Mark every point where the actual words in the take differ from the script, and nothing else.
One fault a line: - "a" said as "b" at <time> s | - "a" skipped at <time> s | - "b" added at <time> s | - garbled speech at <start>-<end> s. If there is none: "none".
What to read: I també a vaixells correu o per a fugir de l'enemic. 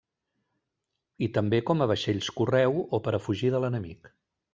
- "com" added at 1.7 s